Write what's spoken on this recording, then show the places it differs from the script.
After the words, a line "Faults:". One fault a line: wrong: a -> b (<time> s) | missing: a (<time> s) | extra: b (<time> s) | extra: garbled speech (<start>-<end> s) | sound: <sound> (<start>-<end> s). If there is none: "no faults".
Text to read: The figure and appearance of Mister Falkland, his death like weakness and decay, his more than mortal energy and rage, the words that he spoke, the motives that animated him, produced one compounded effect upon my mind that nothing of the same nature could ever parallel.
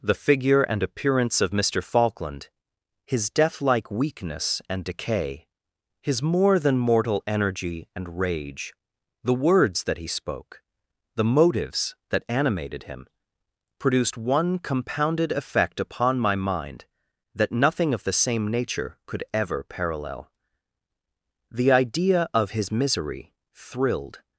The figure and appearance of Mister Falkland, his death like weakness and decay, his more than mortal energy and rage, the words that he spoke, the motives that animated him, produced one compounded effect upon my mind that nothing of the same nature could ever parallel. The idea of his misery thrilled
Faults:
extra: The idea of his misery thrilled (21.5 s)